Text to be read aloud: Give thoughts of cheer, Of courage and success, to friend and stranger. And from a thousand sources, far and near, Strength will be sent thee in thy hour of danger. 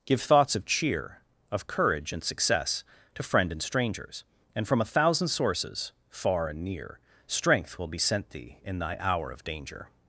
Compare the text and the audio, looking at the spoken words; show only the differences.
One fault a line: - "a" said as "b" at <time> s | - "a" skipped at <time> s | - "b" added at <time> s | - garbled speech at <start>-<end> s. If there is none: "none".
- "stranger" said as "strangers" at 3.6 s